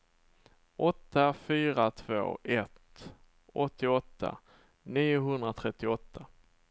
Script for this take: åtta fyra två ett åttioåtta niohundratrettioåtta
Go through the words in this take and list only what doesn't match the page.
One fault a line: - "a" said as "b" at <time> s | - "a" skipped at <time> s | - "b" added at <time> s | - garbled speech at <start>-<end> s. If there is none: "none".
none